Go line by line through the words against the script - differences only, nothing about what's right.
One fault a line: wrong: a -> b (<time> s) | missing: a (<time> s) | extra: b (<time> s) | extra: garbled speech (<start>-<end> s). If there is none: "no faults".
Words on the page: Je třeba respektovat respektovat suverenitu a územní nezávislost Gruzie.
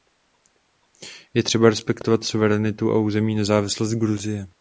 missing: respektovat (2.2 s)